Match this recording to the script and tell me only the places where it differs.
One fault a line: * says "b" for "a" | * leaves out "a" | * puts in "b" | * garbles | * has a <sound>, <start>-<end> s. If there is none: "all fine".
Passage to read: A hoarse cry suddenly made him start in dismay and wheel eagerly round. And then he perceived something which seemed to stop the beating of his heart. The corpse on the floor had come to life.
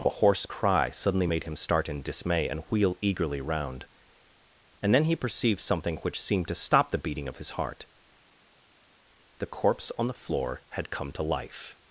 all fine